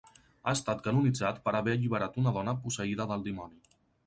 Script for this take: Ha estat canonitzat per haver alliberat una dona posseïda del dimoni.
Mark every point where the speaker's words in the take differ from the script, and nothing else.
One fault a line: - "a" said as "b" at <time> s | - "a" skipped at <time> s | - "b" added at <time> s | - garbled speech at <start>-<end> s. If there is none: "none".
none